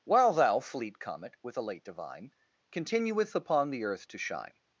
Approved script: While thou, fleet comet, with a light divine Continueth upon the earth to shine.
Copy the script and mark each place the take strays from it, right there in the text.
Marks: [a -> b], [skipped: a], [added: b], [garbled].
While thou, fleet comet, with a [light -> late] divine Continueth upon the earth to shine.